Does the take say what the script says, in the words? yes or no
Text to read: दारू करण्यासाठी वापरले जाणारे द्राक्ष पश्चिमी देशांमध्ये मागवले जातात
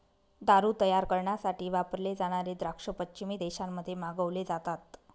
no